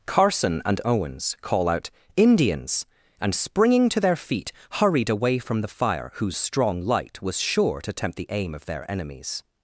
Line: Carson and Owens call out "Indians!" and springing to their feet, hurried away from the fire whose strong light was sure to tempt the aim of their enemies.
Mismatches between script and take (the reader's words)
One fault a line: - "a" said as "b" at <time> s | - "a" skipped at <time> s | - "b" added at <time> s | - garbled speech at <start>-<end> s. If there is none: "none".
none